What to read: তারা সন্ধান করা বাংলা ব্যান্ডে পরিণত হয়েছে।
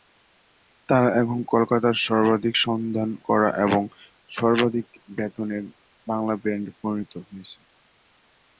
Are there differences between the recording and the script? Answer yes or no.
yes